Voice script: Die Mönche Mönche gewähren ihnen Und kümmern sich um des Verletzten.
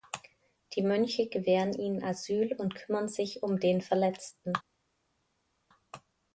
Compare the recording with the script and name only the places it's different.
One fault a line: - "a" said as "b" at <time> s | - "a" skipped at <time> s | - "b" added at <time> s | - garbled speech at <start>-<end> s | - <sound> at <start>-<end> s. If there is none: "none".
- "Mönche" skipped at 1.3 s
- "Asyl" added at 2.0 s
- "des" said as "den" at 3.6 s